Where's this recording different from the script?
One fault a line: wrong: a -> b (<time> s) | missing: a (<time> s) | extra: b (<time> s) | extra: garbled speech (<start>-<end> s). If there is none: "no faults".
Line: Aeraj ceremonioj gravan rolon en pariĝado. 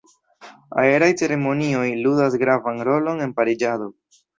extra: ludas (2.1 s)